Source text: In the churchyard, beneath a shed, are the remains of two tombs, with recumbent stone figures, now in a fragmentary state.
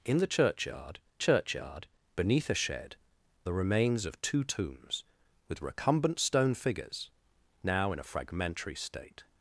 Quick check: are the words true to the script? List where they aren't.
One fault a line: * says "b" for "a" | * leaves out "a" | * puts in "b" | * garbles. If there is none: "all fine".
* puts in "churchyard"
* leaves out "are"